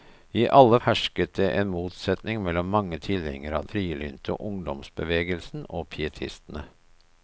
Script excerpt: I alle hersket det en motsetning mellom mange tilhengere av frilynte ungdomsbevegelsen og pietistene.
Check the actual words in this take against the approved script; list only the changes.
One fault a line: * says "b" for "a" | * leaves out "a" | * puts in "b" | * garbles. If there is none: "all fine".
all fine